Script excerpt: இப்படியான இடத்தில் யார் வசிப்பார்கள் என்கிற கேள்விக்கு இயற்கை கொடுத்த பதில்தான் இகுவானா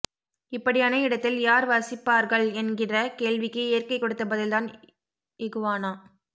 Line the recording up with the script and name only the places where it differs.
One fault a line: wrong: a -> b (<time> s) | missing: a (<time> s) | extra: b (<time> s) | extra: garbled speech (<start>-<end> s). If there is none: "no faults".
no faults